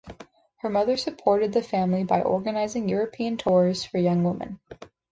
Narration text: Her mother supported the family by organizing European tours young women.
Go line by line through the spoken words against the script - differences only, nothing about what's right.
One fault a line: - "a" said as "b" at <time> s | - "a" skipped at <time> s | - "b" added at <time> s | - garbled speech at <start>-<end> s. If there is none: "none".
- "for" added at 3.8 s